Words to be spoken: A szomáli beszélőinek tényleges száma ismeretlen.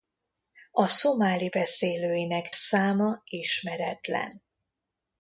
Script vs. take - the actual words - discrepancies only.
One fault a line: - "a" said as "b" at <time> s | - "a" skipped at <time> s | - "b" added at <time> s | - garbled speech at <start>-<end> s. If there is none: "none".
- "tényleges" skipped at 2.5 s